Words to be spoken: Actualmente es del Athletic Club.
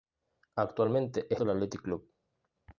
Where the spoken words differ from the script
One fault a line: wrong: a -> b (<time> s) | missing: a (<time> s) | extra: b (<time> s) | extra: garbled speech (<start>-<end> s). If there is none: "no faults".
no faults